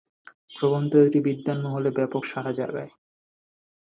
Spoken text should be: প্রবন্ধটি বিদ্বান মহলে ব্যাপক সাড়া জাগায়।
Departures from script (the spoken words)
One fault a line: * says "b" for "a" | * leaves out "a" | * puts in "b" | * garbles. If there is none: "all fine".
all fine